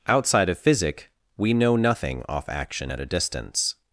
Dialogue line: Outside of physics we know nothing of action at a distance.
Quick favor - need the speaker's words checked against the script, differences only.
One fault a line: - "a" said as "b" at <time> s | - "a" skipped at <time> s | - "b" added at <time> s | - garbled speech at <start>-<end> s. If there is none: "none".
- "physics" said as "physic" at 0.6 s
- "of" said as "off" at 2.3 s